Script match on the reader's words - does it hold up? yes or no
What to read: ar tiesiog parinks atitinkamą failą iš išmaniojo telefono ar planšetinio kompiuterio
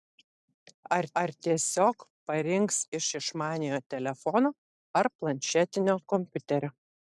no